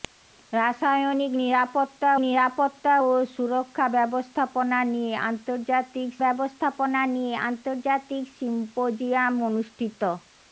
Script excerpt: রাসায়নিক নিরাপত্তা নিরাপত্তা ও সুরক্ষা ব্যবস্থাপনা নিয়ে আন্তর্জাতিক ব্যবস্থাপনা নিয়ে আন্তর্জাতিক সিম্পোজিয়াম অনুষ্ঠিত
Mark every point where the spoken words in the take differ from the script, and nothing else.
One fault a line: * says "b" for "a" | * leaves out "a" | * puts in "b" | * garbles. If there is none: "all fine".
all fine